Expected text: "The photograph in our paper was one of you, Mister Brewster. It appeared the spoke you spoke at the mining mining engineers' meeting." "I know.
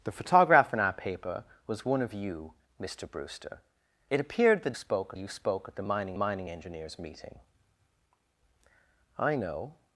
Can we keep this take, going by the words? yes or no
yes